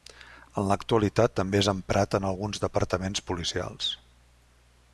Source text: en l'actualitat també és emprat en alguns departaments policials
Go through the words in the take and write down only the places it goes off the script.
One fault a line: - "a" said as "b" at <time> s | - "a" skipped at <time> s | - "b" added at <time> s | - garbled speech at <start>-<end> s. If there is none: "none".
none